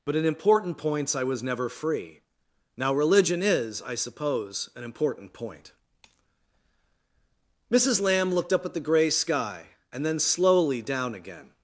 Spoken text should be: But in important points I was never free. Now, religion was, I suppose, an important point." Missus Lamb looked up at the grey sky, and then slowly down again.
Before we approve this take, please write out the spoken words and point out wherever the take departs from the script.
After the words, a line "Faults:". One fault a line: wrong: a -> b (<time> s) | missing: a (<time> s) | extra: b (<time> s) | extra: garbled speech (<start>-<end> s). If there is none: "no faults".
But in important points I was never free. Now, religion is, I suppose, an important point." Missus Lamb looked up at the grey sky, and then slowly down again.
Faults:
wrong: was -> is (3.4 s)